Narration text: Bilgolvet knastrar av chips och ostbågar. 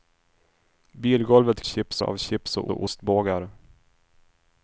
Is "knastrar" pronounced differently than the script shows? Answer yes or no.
yes